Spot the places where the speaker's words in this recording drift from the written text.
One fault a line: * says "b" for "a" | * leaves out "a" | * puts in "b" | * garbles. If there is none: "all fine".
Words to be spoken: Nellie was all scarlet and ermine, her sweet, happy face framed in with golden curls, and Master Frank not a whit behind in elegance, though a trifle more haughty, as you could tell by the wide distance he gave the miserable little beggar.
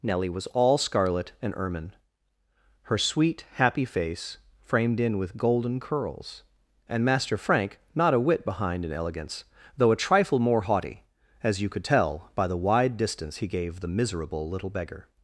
all fine